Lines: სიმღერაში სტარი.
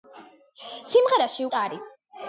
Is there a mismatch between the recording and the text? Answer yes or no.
no